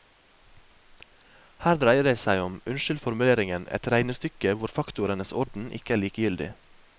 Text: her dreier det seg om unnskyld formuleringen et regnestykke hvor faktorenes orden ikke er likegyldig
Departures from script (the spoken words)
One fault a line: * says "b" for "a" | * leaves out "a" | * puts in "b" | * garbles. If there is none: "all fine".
all fine